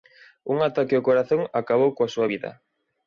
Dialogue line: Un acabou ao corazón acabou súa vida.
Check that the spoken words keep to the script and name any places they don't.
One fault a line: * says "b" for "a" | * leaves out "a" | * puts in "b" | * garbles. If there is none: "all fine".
* says "ataque" for "acabou"
* puts in "coa"